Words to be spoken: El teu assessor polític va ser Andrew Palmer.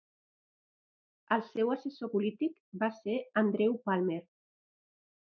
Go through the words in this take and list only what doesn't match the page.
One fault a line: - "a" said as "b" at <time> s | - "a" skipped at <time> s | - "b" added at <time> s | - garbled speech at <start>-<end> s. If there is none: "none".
- "teu" said as "seu" at 1.5 s